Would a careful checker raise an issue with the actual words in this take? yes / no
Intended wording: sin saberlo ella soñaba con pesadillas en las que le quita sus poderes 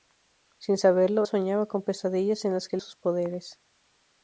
yes